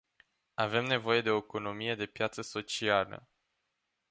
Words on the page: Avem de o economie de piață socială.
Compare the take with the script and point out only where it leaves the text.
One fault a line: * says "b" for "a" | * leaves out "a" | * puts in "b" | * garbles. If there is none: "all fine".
* puts in "nevoie"